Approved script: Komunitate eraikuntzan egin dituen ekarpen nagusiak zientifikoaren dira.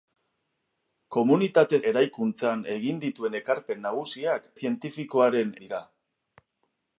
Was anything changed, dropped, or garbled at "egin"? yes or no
no